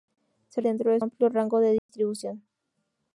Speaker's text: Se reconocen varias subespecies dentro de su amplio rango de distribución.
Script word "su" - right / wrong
wrong